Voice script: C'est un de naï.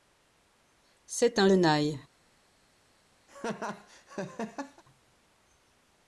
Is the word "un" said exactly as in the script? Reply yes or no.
yes